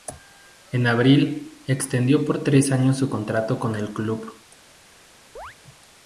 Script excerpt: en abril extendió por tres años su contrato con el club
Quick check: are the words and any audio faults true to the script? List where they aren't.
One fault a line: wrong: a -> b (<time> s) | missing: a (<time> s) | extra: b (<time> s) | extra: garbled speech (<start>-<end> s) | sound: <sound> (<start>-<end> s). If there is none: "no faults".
sound: chirp (5.4-5.6 s)